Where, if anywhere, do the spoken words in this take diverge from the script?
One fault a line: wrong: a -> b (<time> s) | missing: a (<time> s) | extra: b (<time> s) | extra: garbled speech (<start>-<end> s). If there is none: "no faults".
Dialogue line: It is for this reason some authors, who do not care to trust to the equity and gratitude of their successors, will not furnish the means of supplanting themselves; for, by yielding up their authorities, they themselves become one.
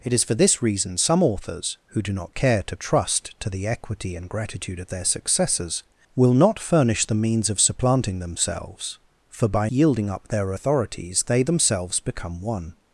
no faults